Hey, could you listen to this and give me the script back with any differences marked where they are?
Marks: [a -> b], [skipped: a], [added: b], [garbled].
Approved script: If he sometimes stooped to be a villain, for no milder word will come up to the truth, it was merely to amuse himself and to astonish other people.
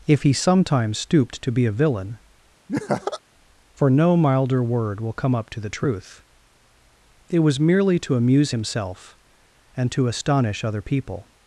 If he sometimes stooped to be a villain, for no milder word will come up to the truth, it was merely to amuse himself and to astonish other people.